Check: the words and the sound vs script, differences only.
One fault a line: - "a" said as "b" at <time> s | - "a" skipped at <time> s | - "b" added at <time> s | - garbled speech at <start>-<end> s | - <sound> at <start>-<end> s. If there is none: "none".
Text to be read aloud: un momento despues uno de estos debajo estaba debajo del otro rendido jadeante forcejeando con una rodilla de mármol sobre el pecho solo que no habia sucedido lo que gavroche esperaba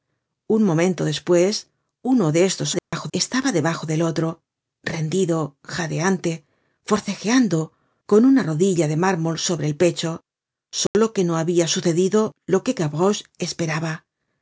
- dropout at 2.8-2.9 s
- dropout at 10.9-10.9 s